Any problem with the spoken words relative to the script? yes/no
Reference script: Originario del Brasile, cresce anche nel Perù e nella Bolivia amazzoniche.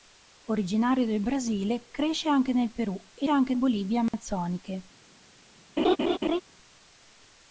yes